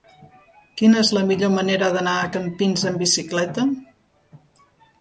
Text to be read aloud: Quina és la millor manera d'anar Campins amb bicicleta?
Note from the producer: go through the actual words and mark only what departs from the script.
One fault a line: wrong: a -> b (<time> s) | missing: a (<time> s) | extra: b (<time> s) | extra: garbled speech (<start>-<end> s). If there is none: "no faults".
extra: a (2.2 s)